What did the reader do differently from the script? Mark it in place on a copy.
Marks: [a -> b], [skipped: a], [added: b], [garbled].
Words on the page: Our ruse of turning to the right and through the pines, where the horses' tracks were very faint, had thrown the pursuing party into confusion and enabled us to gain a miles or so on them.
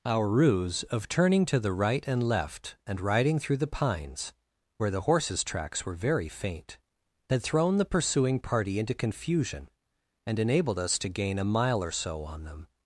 Our ruse of turning to the right and [added: left and riding] through the pines, where the horses' tracks were very faint, had thrown the pursuing party into confusion and enabled us to gain a [miles -> mile] or so on them.